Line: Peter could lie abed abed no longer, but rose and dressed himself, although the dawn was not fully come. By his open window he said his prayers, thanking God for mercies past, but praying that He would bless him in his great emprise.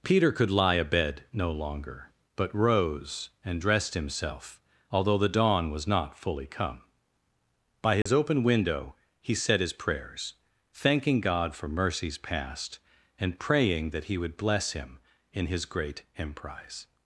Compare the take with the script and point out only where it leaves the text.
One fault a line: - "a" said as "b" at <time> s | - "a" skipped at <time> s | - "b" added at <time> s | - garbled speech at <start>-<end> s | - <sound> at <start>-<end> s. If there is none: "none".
- "abed" skipped at 1.2 s
- dropout at 8.0-8.1 s
- "but" said as "and" at 13.2 s